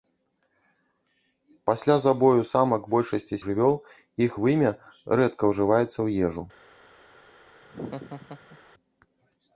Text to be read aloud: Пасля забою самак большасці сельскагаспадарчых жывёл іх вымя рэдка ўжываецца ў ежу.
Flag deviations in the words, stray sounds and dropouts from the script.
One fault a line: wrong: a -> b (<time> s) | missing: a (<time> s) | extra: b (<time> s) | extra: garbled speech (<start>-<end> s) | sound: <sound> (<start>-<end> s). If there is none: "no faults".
missing: сельскагаспадарчых (3.4 s)
sound: laugh (7.6-8.6 s)